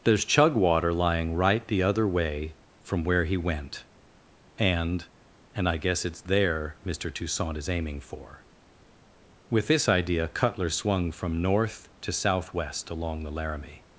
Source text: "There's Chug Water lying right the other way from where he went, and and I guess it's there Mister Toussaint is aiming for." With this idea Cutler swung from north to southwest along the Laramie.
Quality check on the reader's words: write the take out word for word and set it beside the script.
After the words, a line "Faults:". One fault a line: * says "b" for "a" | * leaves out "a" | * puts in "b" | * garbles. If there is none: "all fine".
"There's Chug Water lying right the other way from where he went, and and I guess it's there Mister Toussaint is aiming for." With this idea Cutler swung from north to southwest along the Laramie.
Faults:
all fine